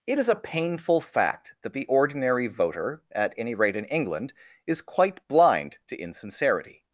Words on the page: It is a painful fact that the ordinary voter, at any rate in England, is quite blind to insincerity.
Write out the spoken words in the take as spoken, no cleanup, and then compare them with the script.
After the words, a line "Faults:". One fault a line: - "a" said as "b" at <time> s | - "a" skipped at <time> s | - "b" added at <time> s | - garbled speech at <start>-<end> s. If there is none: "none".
It is a painful fact that the ordinary voter, at any rate in England, is quite blind to insincerity.
Faults:
none